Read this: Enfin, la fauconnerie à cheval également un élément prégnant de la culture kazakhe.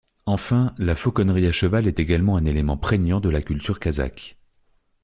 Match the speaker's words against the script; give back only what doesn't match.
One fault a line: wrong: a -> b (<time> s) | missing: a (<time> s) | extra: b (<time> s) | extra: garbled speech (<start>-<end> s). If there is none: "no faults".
extra: est (1.9 s)